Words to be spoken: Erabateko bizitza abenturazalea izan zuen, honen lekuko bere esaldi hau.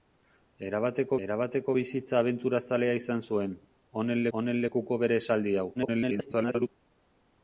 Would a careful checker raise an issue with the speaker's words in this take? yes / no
yes